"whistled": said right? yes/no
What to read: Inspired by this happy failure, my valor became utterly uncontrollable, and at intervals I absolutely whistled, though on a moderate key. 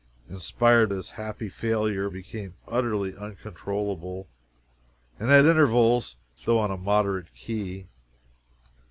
no